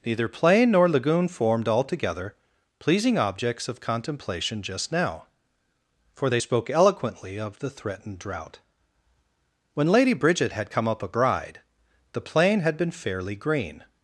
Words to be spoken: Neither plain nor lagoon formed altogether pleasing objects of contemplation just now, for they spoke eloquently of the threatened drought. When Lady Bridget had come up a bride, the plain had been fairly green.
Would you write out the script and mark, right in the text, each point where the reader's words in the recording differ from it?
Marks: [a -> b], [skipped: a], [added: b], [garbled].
Neither plain nor lagoon formed altogether pleasing objects of contemplation just now, for they spoke eloquently of the threatened drought. When Lady Bridget had come up a bride, the plain had been fairly green.